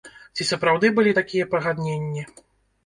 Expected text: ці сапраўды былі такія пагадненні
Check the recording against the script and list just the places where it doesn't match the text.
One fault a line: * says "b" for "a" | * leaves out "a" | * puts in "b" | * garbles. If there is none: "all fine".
all fine